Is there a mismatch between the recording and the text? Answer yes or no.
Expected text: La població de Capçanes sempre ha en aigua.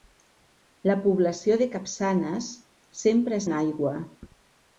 no